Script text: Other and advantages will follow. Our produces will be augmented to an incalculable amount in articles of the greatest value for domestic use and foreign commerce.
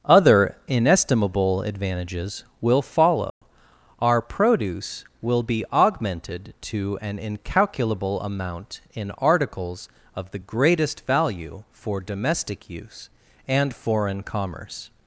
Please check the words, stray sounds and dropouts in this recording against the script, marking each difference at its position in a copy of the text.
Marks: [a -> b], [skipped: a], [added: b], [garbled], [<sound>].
Other [and -> inestimable] advantages will follow. [dropout] Our [produces -> produce] will be augmented to an incalculable amount in articles of the greatest value for domestic use and foreign commerce.